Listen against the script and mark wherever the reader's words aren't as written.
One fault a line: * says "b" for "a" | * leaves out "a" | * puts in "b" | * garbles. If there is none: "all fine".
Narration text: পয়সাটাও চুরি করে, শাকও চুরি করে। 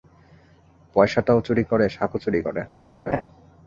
all fine